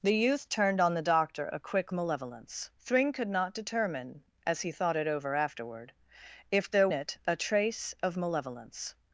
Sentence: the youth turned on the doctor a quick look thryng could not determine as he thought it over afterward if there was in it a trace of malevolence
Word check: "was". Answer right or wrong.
wrong